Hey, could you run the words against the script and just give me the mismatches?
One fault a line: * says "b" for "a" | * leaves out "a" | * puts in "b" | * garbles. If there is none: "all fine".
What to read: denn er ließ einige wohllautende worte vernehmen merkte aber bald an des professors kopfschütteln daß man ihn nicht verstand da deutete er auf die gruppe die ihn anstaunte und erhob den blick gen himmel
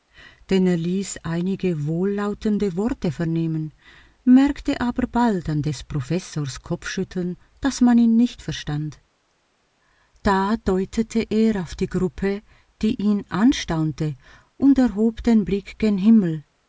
all fine